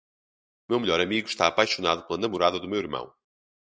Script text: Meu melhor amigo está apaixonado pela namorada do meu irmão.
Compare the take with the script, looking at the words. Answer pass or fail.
pass